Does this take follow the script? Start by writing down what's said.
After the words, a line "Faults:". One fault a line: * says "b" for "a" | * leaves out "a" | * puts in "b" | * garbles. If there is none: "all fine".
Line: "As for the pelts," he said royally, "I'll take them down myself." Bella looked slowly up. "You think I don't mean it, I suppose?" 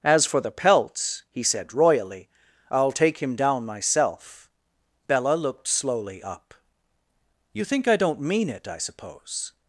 "As for the pelts," he said royally, "I'll take him down myself." Bella looked slowly up. "You think I don't mean it, I suppose?"
Faults:
* says "him" for "them"